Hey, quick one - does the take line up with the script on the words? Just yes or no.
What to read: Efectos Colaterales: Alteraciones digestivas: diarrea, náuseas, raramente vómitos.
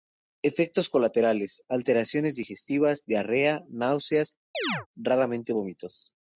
yes